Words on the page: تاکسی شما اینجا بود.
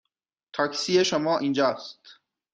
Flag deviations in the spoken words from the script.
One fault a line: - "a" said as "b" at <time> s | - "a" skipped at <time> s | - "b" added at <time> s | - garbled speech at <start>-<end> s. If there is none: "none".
- "بود" said as "است" at 1.6 s